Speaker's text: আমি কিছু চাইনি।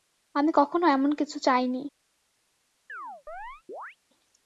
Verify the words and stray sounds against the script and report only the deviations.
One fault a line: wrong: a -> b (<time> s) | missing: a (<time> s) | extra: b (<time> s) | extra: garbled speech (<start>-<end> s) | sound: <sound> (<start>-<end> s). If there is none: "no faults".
extra: কখনো এমন (0.5 s)
sound: chirp (2.9-4.0 s)